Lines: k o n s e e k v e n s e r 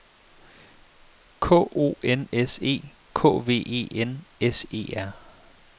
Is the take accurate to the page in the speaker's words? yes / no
no